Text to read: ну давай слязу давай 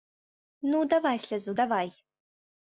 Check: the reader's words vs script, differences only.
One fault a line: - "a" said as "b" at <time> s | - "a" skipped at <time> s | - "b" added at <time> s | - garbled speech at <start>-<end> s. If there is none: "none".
none